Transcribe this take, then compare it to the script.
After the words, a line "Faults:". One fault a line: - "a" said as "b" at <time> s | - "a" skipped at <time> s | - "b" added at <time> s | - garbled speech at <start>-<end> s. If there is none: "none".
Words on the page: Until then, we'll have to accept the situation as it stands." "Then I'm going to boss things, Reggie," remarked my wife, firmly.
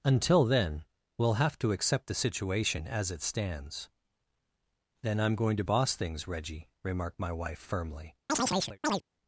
Until then, we'll have to accept the situation as it stands." "Then I'm going to boss things, Reggie," remarked my wife, firmly.
Faults:
none